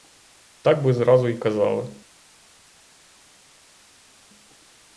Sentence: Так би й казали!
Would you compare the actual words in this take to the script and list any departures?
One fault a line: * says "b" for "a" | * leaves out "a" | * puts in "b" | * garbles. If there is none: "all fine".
* puts in "зразу"